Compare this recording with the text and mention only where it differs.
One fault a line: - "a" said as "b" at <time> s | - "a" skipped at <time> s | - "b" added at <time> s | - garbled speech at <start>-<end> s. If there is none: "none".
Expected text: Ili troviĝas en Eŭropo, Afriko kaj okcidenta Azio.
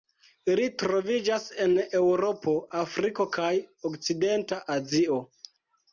none